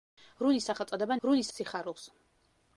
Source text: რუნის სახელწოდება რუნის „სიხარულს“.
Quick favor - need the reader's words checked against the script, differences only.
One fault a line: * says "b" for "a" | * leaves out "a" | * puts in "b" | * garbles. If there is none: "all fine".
all fine